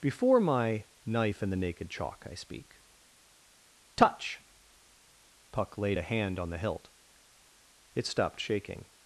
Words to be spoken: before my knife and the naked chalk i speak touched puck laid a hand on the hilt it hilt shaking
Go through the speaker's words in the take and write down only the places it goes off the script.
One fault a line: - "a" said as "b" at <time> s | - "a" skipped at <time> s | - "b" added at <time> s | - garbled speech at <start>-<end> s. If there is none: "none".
- "touched" said as "touch" at 4.0 s
- "hilt" said as "stopped" at 8.0 s